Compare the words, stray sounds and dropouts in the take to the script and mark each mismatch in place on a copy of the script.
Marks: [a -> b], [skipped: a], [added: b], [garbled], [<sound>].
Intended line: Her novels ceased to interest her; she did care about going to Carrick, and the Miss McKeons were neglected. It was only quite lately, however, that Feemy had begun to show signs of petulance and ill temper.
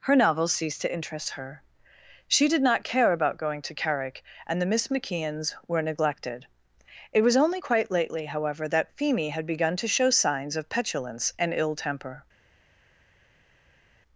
Her novels ceased to interest her; she did [added: not] care about going to Carrick, and the Miss McKeons were neglected. It was only quite lately, however, that Feemy had begun to show signs of petulance and ill temper.